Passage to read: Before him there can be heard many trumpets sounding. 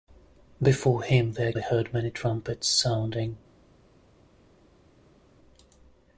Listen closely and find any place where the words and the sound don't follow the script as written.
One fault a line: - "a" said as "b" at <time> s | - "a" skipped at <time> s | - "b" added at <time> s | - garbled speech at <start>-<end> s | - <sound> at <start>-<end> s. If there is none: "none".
- "can" skipped at 1.5 s